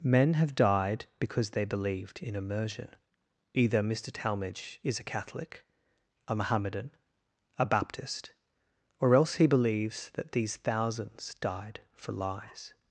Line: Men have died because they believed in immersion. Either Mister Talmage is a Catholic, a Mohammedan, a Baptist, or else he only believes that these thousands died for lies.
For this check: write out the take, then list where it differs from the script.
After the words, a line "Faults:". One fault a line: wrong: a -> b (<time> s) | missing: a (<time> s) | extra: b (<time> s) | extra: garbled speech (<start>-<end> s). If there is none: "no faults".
Men have died because they believed in immersion. Either Mister Talmage is a Catholic, a Mohammedan, a Baptist, or else he believes that these thousands died for lies.
Faults:
missing: only (9.4 s)